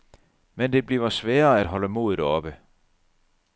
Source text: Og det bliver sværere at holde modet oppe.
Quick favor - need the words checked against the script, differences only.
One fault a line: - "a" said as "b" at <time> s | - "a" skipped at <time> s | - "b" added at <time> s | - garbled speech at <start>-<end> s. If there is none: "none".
- "Og" said as "Men" at 0.6 s